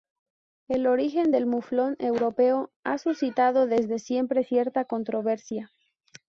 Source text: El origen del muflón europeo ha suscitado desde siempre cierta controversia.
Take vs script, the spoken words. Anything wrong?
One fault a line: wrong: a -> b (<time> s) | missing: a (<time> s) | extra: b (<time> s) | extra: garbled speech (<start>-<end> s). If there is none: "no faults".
no faults